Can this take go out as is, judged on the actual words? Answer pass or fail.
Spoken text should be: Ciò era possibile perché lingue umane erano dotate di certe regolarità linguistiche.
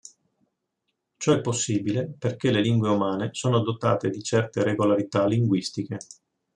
fail